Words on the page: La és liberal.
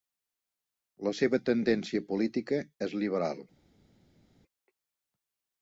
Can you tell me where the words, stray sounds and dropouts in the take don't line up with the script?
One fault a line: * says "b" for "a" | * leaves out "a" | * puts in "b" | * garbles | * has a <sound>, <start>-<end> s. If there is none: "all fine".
* puts in "seva tendència política"